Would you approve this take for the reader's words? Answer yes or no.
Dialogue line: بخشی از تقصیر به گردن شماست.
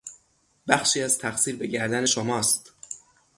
yes